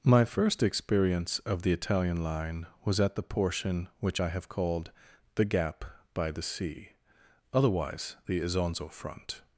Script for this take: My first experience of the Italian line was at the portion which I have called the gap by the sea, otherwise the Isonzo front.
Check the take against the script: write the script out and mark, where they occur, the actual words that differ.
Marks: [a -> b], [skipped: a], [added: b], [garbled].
My first experience of the Italian line was at the portion which I have called the gap by the sea, otherwise the Isonzo front.